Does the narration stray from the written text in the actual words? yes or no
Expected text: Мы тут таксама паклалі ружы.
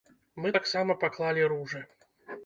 yes